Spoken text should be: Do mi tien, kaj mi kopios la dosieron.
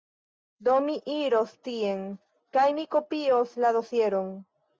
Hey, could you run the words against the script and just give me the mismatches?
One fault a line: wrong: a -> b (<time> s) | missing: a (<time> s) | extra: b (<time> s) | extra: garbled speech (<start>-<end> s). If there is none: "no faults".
extra: iros (1.1 s)